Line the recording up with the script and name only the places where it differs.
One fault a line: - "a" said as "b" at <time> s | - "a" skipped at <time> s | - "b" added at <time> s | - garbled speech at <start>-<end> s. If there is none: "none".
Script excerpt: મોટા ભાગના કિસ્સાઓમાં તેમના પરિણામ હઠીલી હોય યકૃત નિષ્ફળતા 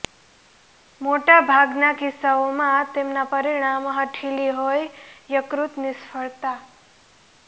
none